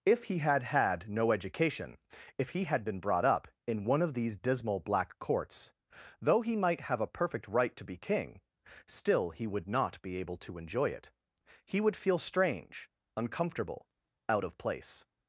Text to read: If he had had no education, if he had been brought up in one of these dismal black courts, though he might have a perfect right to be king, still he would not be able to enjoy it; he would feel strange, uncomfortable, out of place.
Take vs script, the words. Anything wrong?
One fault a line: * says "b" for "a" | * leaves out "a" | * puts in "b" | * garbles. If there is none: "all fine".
all fine